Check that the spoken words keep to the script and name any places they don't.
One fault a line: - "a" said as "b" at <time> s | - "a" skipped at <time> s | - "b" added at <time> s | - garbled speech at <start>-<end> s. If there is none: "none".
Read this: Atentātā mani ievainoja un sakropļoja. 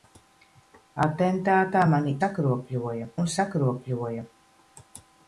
- "ievainoja" said as "sakropļoja" at 2.2 s